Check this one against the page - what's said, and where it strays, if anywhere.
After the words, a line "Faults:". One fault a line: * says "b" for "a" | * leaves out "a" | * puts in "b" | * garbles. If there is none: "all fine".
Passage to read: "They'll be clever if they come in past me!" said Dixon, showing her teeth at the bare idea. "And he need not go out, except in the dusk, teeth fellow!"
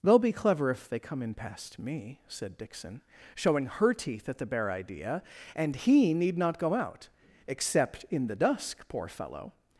"They'll be clever if they come in past me!" said Dixon, showing her teeth at the bare idea. "And he need not go out, except in the dusk, poor fellow!"
Faults:
* says "poor" for "teeth"